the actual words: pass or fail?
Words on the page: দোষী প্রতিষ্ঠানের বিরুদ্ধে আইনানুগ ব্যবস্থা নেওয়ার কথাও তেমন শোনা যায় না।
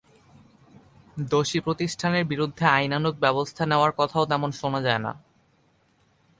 pass